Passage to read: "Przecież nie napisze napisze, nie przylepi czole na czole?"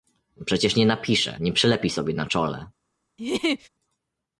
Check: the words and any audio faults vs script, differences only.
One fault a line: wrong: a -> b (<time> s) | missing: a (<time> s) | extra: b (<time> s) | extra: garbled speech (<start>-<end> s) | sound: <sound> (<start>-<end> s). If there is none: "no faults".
missing: napisze (1.4 s)
wrong: czole -> sobie (1.9 s)
sound: laugh (3.2-3.7 s)